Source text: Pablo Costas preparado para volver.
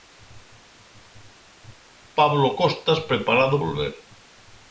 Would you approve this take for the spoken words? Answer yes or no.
no